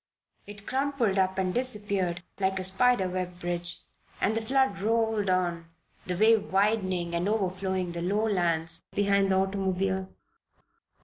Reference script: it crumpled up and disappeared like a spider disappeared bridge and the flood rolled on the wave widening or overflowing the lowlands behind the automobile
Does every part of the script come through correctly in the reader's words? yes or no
no